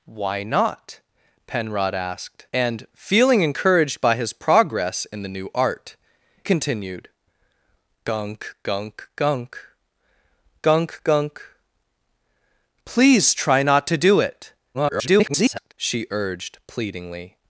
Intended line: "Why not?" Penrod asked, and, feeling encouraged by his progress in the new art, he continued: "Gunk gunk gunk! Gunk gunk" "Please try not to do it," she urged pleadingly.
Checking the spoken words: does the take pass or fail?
fail